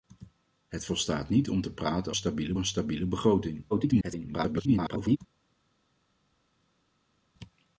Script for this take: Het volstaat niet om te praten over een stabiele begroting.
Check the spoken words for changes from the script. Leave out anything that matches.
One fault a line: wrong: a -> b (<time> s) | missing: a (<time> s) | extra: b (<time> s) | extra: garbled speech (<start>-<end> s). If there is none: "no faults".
wrong: over -> stabiele (2.1 s)
extra: garbled speech (3.7-5.2 s)